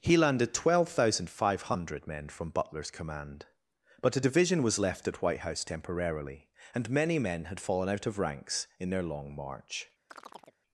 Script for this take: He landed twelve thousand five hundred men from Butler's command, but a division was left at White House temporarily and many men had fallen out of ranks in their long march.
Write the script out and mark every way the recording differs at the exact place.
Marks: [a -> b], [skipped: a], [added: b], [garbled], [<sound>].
He landed twelve thousand five hundred men from Butler's command, but a division was left at White House temporarily and many men had fallen out of ranks in their long march. [chirp]